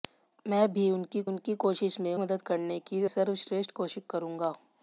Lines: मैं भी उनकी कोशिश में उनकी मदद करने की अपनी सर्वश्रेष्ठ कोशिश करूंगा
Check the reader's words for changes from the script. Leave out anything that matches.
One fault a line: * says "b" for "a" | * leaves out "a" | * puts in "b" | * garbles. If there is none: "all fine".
* puts in "उनकी"
* leaves out "उनकी"
* leaves out "अपनी"